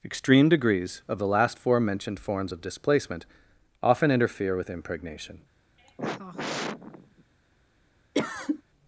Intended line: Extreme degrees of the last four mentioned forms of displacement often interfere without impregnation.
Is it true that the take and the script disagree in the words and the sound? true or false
true